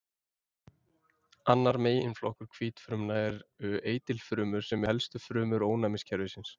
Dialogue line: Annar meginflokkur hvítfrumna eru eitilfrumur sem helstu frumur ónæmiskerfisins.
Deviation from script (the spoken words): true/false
false